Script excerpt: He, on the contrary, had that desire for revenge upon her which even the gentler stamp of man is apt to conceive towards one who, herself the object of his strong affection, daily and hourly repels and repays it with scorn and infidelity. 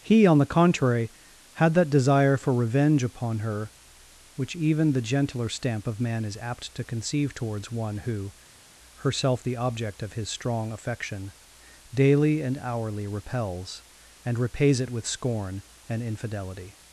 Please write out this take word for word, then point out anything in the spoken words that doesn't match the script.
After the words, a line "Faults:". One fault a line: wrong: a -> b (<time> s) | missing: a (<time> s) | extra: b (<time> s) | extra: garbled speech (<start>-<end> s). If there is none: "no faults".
He, on the contrary, had that desire for revenge upon her which even the gentler stamp of man is apt to conceive towards one who, herself the object of his strong affection, daily and hourly repels and repays it with scorn and infidelity.
Faults:
no faults